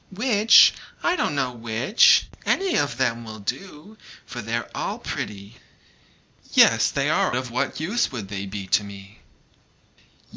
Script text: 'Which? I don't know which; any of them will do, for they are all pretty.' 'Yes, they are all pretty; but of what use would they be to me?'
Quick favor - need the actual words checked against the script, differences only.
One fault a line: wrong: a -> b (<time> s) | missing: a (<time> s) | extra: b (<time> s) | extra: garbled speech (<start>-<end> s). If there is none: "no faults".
missing: all pretty but (7.3 s)